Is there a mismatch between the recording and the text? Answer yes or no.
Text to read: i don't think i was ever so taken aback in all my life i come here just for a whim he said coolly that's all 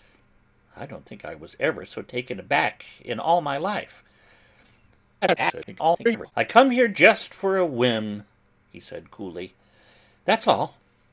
yes